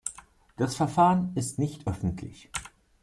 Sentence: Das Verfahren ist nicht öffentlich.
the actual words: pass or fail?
pass